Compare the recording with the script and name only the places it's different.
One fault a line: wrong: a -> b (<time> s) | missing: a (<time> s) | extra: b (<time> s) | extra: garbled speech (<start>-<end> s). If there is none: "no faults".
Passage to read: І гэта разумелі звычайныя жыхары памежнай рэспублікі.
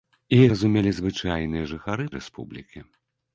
missing: гэта (0.4 s)
missing: памежнай (2.0 s)